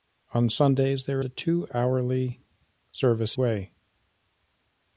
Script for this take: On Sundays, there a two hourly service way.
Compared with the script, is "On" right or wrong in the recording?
right